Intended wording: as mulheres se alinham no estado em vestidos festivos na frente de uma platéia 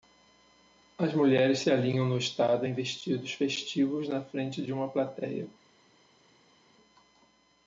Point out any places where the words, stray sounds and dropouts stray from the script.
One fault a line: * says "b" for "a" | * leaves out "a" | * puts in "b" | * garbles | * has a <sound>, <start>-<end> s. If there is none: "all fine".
all fine